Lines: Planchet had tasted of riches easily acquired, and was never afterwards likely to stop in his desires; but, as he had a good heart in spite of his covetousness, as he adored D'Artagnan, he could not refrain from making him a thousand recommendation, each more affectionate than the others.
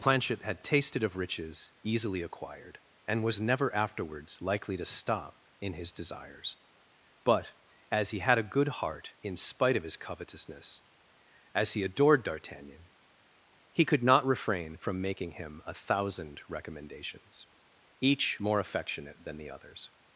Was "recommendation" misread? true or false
true